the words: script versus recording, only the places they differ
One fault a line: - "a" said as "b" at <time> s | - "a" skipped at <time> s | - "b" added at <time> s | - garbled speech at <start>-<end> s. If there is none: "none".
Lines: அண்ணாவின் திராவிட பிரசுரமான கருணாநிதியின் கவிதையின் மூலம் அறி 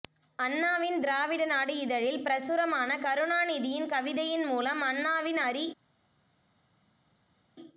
- "நாடு இதழில்" added at 1.4 s
- "அண்ணாவின்" added at 4.8 s